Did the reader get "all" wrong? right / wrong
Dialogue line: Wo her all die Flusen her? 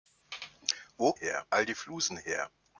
right